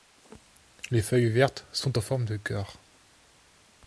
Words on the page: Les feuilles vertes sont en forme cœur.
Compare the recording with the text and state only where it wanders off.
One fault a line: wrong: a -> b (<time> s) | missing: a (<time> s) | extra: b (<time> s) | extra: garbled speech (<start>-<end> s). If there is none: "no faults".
extra: de (2.2 s)